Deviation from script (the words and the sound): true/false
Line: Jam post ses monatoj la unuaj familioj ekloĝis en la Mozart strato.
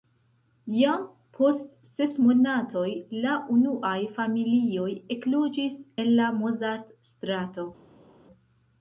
false